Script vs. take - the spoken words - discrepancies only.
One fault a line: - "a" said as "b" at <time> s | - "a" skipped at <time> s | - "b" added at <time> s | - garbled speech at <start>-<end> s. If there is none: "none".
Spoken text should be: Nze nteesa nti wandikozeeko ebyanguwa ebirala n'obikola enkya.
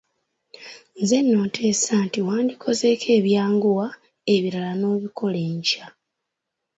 - "nno" added at 1.2 s